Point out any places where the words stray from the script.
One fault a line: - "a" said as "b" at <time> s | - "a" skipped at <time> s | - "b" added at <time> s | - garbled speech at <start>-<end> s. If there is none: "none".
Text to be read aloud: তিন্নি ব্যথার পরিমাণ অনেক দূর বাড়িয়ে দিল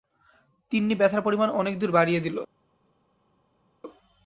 none